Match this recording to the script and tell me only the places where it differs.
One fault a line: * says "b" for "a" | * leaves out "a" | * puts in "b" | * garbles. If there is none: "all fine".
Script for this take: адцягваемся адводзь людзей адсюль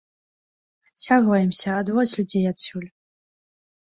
all fine